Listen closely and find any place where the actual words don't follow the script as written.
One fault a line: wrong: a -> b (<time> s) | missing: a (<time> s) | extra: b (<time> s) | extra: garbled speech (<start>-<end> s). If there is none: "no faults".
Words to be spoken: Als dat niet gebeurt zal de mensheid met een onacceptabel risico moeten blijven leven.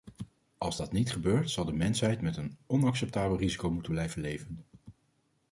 no faults